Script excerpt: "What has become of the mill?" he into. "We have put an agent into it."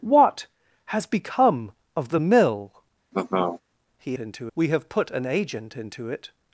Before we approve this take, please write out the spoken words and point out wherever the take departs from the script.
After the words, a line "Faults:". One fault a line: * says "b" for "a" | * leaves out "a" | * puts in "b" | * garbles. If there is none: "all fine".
"What has become of the mill?" he into. "We have put an agent into it."
Faults:
all fine